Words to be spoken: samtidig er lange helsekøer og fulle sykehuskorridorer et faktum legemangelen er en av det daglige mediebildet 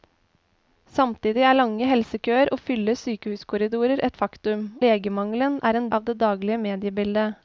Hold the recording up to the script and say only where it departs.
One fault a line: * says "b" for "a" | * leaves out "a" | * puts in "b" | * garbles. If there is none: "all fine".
all fine